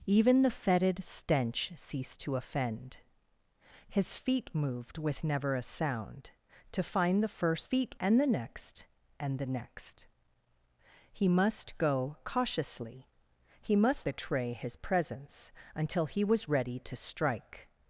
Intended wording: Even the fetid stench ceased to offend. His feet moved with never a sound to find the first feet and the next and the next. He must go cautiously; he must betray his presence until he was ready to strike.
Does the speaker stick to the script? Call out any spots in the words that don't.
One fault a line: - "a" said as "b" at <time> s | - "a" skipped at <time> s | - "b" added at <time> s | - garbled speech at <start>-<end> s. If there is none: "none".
none